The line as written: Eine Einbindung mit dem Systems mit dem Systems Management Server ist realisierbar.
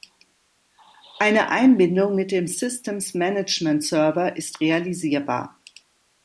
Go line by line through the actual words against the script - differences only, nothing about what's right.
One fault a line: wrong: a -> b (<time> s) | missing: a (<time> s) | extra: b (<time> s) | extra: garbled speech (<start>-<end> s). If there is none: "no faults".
missing: mit dem Systems (3.1 s)